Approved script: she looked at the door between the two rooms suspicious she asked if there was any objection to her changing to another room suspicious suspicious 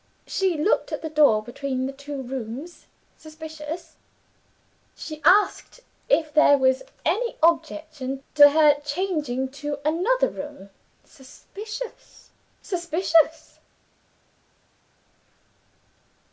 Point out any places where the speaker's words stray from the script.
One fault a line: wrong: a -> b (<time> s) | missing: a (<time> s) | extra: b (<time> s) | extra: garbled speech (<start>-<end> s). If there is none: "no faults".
no faults